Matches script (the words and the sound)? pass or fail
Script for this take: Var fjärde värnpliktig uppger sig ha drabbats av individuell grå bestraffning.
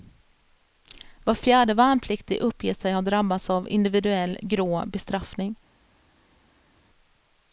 pass